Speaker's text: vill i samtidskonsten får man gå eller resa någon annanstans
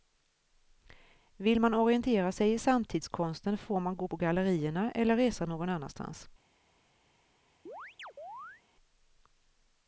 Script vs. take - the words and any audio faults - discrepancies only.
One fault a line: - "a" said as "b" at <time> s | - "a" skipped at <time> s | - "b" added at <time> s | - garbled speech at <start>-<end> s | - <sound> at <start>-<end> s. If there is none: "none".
- "man orientera sig" added at 1.6 s
- "på gallerierna" added at 4.0 s
- chirp at 7.7-8.6 s